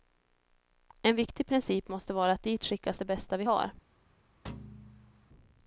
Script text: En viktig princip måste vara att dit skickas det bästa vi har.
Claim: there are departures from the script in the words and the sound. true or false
true